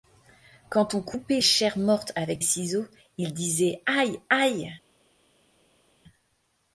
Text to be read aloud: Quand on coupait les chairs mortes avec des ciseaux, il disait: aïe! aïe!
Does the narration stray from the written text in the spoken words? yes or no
yes